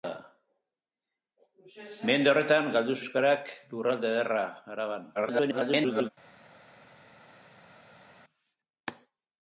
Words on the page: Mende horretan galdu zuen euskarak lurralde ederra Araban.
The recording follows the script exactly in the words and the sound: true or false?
false